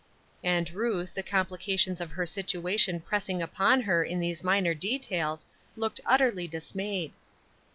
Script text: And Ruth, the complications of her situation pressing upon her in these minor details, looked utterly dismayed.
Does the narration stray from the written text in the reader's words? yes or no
no